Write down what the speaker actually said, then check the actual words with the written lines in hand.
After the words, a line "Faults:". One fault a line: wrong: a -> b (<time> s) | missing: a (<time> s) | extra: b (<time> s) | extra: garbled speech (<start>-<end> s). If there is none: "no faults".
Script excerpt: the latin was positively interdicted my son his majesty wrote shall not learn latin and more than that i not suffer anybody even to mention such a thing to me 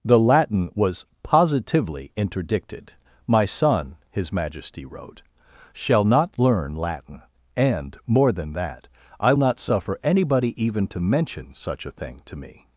the latin was positively interdicted my son his majesty wrote shall not learn latin and more than that i not suffer anybody even to mention such a thing to me
Faults:
no faults